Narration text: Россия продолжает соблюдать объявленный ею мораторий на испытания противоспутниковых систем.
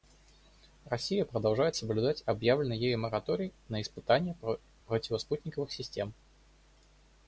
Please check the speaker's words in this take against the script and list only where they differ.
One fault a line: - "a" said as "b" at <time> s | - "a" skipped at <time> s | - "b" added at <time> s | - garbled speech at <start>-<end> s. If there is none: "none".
none